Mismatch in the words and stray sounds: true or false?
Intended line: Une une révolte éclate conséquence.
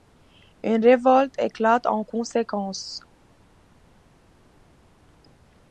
true